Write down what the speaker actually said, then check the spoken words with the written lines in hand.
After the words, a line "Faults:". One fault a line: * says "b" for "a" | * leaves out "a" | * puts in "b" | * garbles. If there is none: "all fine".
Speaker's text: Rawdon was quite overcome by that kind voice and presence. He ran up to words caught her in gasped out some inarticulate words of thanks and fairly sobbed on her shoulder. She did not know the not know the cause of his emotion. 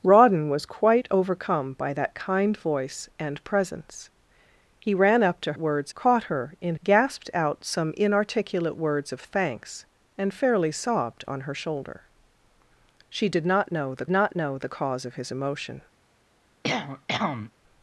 Rawdon was quite overcome by that kind voice and presence. He ran up to words caught her in gasped out some inarticulate words of thanks and fairly sobbed on her shoulder. She did not know the not know the cause of his emotion.
Faults:
all fine